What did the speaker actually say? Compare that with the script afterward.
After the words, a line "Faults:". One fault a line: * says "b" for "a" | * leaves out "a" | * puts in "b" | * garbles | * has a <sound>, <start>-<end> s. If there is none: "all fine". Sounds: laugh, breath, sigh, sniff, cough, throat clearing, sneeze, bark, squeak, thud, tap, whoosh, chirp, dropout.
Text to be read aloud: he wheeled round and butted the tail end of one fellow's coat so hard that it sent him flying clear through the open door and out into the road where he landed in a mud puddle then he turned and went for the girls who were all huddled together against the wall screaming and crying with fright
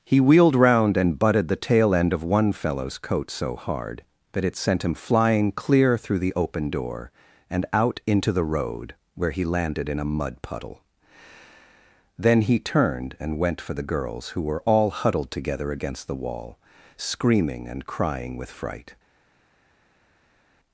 he wheeled round and butted the tail end of one fellow's coat so hard that it sent him flying clear through the open door and out into the road where he landed in a mud puddle then he turned and went for the girls who were all huddled together against the wall screaming and crying with fright
Faults:
all fine